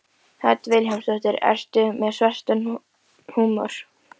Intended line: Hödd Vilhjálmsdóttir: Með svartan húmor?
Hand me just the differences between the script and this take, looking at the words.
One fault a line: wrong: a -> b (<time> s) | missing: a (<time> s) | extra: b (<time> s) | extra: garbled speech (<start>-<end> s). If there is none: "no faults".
extra: Ertu (1.5 s)